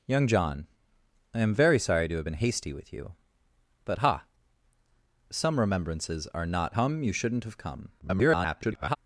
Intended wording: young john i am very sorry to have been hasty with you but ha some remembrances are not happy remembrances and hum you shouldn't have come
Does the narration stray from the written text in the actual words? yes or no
yes